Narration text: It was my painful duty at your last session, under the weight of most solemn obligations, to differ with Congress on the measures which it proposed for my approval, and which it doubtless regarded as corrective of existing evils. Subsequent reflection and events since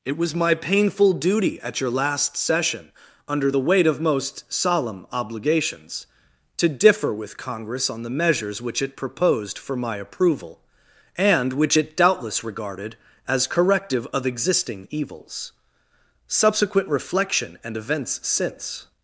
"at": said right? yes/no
yes